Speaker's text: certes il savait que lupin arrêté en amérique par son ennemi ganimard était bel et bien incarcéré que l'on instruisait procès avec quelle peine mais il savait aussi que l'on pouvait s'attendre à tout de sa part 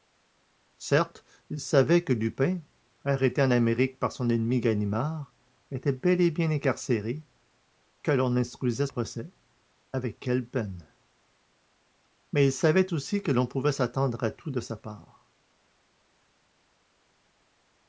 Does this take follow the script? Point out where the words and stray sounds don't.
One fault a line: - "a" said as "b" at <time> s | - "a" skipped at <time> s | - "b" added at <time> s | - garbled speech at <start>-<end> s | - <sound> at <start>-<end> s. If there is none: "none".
none